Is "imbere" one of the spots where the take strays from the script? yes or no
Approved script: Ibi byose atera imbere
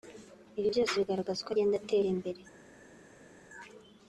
no